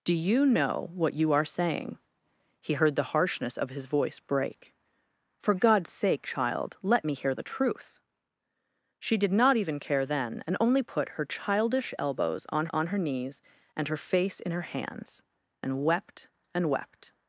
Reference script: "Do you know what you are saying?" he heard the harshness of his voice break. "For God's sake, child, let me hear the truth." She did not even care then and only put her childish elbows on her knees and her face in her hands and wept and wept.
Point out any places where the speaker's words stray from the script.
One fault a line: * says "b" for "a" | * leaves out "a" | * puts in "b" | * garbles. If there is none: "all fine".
* puts in "on"